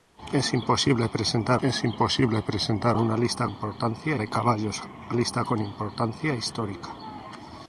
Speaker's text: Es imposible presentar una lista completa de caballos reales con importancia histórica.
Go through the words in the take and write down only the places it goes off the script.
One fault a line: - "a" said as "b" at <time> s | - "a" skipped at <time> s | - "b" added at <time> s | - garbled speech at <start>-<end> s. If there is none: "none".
- "es imposible presentar" added at 1.6 s
- "completa" said as "importancia" at 3.4 s
- "reales" said as "lista" at 5.1 s